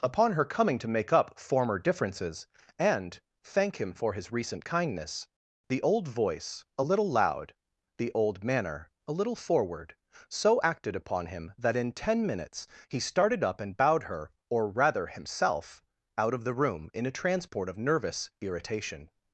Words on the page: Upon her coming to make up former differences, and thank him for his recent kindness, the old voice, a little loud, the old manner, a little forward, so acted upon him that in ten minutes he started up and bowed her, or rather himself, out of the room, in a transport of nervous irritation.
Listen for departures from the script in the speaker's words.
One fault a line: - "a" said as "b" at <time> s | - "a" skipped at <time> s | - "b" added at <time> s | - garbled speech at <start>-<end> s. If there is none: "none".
none